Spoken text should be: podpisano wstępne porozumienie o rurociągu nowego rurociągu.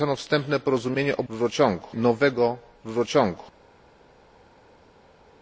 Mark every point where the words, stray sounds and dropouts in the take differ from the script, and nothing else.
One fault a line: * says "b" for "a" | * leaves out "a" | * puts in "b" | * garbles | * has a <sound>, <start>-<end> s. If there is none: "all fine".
all fine